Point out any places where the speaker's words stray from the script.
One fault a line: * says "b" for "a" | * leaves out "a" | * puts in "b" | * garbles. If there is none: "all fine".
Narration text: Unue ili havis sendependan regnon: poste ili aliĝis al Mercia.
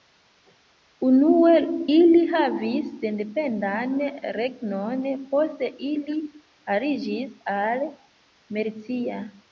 all fine